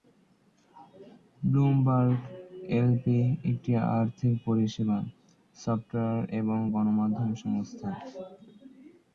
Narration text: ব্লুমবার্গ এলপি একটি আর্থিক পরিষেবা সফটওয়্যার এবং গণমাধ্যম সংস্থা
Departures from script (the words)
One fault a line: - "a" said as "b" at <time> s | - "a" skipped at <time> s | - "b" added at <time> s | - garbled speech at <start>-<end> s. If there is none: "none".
none